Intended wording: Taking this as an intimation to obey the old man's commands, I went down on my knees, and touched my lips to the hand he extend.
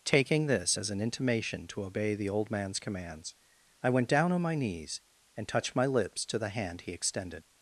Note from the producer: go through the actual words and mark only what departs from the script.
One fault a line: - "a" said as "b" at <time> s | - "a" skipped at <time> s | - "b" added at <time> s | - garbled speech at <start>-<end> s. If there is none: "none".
- "extend" said as "extended" at 6.9 s